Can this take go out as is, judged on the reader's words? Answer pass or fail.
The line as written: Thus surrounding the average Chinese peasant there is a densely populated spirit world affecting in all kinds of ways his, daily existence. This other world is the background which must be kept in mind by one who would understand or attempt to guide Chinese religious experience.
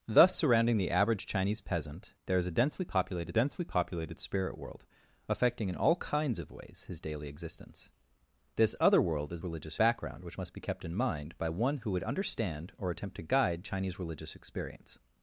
fail